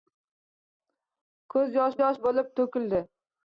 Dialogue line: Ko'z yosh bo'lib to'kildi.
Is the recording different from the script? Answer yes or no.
yes